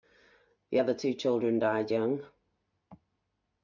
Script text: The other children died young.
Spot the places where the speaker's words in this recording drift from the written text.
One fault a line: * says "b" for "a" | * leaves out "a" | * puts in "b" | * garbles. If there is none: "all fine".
* puts in "two"